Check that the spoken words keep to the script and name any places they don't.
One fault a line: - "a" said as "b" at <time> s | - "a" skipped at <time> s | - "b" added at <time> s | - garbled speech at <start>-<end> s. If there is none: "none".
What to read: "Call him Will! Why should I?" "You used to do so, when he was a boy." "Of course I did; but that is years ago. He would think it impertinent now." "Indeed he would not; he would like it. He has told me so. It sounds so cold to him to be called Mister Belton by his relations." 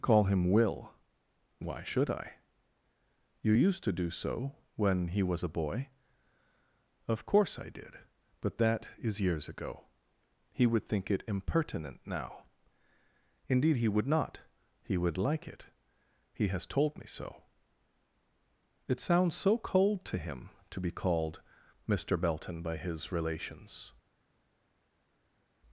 none